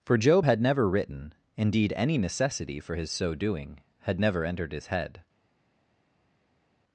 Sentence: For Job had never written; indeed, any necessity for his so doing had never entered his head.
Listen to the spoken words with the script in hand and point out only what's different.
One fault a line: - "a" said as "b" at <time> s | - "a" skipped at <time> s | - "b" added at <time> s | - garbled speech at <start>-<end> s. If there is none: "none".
none